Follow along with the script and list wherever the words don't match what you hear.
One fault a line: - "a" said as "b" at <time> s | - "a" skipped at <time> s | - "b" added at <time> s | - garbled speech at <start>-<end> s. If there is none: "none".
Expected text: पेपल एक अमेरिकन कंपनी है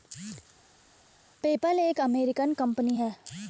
none